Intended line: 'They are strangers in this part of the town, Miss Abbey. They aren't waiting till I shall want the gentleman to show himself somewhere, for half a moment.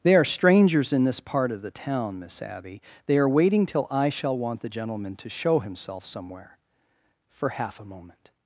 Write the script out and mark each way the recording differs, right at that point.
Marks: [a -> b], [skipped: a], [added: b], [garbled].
'They are strangers in this part of the town, Miss Abbey. They [aren't -> are] waiting till I shall want the gentleman to show himself somewhere, for half a moment.